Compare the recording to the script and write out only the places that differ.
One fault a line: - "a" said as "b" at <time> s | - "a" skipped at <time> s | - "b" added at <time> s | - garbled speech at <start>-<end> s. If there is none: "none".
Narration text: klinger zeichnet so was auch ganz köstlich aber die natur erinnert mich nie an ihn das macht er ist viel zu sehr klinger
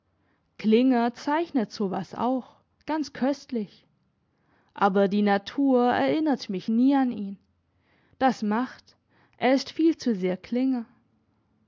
none